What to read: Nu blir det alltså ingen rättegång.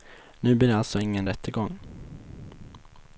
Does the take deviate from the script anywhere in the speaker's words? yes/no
no